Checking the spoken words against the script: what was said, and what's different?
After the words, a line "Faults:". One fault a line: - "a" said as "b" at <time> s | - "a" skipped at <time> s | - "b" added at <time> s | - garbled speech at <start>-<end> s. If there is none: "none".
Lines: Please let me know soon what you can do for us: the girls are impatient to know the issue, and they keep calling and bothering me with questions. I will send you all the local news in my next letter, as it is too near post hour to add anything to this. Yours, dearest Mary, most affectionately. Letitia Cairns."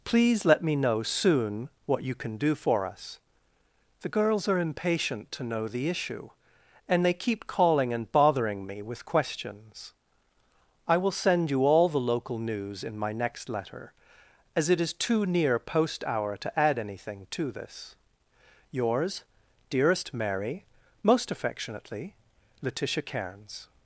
Please let me know soon what you can do for us: the girls are impatient to know the issue, and they keep calling and bothering me with questions. I will send you all the local news in my next letter, as it is too near post hour to add anything to this. Yours, dearest Mary, most affectionately. Letitia Cairns."
Faults:
none